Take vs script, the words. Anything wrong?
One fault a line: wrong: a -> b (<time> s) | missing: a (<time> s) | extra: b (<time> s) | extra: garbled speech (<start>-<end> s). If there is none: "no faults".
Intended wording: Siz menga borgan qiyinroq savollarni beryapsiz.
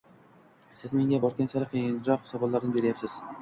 extra: sari (1.6 s)